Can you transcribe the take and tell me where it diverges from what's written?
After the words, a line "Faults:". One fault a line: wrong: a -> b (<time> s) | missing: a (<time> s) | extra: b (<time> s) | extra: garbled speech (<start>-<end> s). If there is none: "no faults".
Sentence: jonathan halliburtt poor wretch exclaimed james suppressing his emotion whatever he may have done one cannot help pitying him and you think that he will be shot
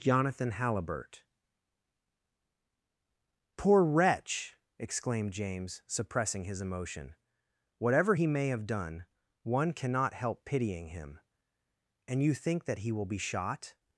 jonathan halliburtt poor wretch exclaimed james suppressing his emotion whatever he may have done one cannot help pitying him and you think that he will be shot
Faults:
no faults